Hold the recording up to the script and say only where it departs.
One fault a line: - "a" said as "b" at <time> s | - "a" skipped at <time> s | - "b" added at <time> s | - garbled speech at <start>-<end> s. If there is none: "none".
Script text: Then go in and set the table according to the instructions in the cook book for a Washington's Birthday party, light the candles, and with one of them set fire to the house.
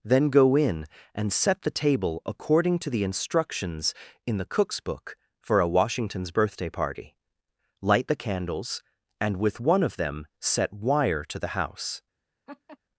- "cook" said as "cooks" at 4.5 s
- "fire" said as "wire" at 10.7 s